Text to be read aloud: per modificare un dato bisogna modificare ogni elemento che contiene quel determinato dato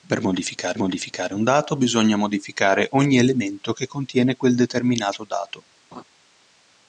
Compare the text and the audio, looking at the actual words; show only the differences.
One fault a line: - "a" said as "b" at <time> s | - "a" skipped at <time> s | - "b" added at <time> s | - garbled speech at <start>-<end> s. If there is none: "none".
- "modificare" added at 0.7 s